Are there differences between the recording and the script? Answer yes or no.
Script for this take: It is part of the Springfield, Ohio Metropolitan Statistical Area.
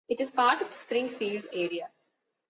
yes